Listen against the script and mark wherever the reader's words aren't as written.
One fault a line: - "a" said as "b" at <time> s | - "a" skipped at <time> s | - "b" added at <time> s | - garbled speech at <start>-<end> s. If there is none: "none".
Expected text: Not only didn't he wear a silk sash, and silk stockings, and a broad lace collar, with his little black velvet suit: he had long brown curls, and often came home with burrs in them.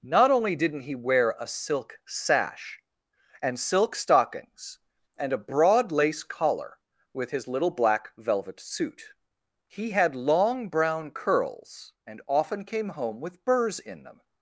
none